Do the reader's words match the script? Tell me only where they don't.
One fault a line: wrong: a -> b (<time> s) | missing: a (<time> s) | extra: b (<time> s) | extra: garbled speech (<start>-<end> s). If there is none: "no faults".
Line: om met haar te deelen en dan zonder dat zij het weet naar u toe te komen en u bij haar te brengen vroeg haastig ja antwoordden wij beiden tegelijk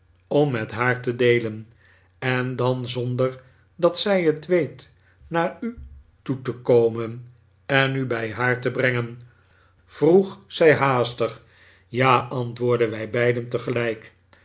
extra: zij (10.5 s)